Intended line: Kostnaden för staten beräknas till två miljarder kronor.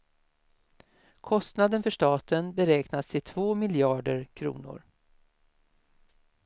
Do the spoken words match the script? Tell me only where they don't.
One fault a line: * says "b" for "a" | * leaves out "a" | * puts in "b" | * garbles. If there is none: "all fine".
all fine